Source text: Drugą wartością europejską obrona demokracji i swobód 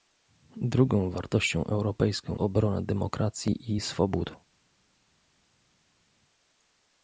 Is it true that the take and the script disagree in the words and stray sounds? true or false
false